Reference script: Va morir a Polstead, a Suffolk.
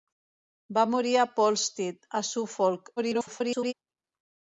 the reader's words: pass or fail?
fail